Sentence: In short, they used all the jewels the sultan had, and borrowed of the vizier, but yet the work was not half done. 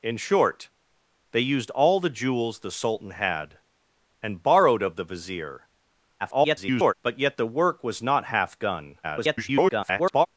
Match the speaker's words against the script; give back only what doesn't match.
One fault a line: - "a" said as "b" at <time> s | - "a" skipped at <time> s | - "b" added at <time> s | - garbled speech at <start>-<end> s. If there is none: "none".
- garbled speech at 6.2-6.9 s
- garbled speech at 9.0-10.3 s